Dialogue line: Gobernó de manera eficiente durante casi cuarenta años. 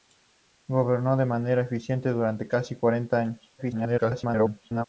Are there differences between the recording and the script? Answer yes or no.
yes